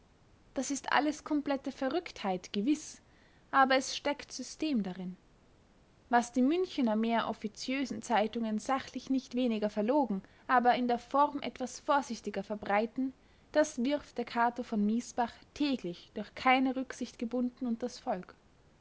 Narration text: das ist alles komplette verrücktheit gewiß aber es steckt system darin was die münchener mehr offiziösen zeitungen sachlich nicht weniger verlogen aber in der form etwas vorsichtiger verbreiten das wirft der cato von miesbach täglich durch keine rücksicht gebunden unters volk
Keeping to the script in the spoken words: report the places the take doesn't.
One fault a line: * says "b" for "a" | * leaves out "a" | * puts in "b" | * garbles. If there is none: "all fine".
all fine